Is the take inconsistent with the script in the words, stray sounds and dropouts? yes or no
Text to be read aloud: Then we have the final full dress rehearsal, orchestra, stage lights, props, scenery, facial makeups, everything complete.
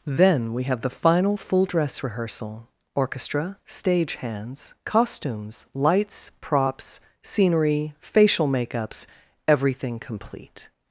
yes